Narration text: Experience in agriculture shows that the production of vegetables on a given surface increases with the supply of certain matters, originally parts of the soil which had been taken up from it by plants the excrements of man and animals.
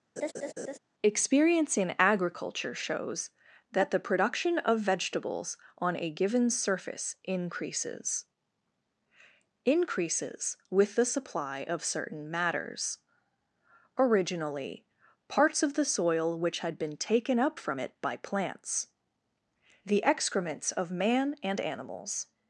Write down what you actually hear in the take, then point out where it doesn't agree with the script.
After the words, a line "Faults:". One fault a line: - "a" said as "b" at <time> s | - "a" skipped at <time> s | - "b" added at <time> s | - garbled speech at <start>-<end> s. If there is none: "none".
Experience in agriculture shows that the production of vegetables on a given surface increases increases with the supply of certain matters, originally parts of the soil which had been taken up from it by plants the excrements of man and animals.
Faults:
- "increases" added at 9.6 s